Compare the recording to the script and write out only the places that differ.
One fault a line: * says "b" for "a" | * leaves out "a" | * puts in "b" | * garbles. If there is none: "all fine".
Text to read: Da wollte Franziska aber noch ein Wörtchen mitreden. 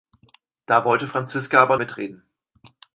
* leaves out "noch ein Wörtchen"